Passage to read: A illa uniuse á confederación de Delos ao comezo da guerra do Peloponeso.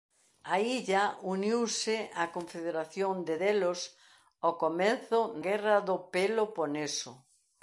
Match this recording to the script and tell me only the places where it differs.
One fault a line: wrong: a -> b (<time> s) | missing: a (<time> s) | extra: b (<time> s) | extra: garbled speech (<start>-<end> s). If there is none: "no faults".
missing: da (5.2 s)